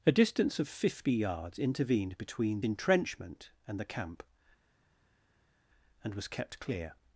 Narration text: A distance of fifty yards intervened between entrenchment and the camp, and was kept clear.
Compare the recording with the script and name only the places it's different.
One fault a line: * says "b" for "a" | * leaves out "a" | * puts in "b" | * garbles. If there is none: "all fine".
all fine